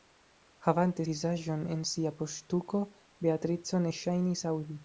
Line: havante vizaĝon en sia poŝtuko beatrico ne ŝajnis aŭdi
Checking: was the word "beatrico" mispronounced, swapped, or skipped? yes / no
no